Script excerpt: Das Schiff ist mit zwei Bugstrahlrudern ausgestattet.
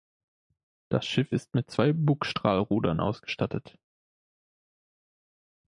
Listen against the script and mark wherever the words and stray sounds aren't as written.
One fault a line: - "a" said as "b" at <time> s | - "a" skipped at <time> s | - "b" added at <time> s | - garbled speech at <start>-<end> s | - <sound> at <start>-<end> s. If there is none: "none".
none